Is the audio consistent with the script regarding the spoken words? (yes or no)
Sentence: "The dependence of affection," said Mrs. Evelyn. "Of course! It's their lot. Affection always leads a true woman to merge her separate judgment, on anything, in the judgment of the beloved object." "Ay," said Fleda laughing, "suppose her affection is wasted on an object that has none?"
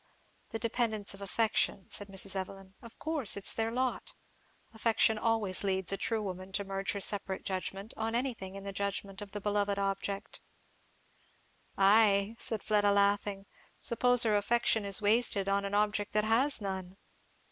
yes